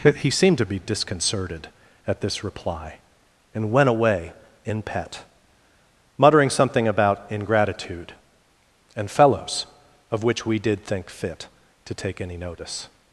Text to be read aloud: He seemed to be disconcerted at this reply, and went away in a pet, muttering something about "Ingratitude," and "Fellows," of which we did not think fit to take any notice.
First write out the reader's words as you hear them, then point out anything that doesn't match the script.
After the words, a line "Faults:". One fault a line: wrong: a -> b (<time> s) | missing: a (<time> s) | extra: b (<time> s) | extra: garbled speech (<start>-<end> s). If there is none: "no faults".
He seemed to be disconcerted at this reply, and went away in pet, muttering something about "Ingratitude," and "Fellows," of which we did think fit to take any notice.
Faults:
missing: a (4.8 s)
missing: not (10.8 s)